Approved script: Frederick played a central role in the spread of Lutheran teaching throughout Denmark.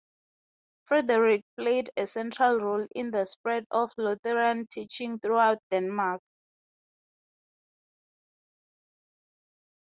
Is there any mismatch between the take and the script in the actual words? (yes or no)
no